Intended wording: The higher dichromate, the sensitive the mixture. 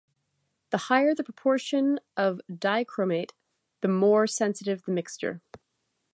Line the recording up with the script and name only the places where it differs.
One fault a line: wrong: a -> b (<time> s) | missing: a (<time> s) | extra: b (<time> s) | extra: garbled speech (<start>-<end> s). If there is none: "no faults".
extra: the proportion of (1.1 s)
extra: more (3.9 s)